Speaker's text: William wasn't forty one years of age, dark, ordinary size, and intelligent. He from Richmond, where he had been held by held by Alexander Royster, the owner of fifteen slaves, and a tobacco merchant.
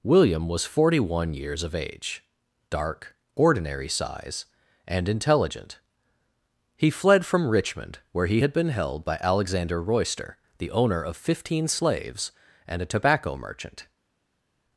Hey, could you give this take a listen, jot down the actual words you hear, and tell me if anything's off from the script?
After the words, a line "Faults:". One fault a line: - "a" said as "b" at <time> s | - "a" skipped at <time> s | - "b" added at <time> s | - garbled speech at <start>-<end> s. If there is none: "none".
William was forty one years of age, dark, ordinary size, and intelligent. He fled from Richmond, where he had been held by Alexander Royster, the owner of fifteen slaves, and a tobacco merchant.
Faults:
- "wasn't" said as "was" at 0.5 s
- "fled" added at 6.9 s
- "held by" skipped at 9.2 s